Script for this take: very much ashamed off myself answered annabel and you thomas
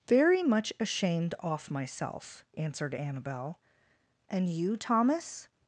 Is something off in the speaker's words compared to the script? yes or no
no